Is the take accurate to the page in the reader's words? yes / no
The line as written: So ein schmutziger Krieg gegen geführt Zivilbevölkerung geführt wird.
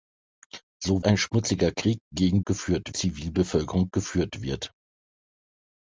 yes